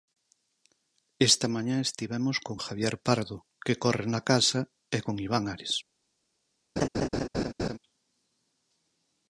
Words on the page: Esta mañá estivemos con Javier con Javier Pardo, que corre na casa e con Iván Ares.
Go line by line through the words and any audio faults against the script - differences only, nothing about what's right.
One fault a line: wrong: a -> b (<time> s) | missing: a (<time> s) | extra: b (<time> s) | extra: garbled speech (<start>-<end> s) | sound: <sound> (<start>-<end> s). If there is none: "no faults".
missing: con Javier (3.0 s)
sound: laugh (6.8-7.8 s)